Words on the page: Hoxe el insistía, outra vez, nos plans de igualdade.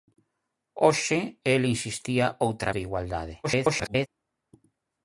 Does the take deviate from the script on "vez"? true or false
true